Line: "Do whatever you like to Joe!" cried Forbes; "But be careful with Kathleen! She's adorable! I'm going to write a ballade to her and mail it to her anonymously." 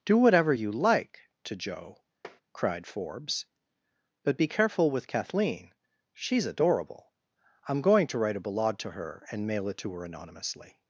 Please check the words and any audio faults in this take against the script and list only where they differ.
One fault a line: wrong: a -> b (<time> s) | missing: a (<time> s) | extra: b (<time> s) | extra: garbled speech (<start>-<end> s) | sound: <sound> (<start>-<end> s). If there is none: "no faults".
sound: tap (2.2-2.4 s)